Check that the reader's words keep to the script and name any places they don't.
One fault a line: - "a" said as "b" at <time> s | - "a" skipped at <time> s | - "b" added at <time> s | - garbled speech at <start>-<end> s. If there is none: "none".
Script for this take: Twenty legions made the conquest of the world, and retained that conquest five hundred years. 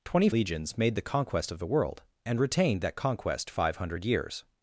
none